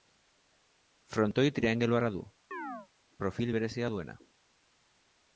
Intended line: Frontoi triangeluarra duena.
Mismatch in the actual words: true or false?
true